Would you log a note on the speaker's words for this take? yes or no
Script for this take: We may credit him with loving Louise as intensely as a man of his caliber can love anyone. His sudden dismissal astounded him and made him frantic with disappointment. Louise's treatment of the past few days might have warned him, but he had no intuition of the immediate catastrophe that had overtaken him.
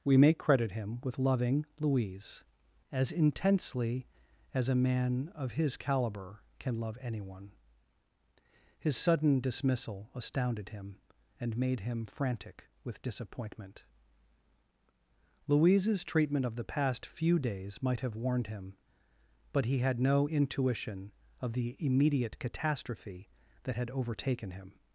no